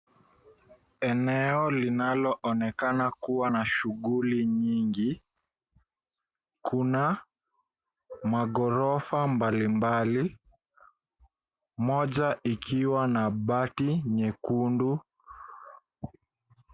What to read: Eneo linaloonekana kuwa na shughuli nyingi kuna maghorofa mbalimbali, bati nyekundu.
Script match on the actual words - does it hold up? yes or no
no